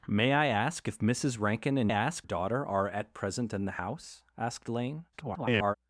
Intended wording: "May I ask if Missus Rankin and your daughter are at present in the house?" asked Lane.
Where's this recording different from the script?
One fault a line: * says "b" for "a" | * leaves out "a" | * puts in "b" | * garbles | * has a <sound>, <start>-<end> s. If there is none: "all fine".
* says "ask" for "your"
* garbles